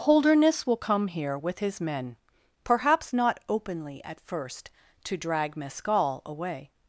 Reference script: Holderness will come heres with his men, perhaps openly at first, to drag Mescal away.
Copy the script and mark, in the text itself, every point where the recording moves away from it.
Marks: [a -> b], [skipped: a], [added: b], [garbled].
Holderness will come [heres -> here] with his men, perhaps [added: not] openly at first, to drag Mescal away.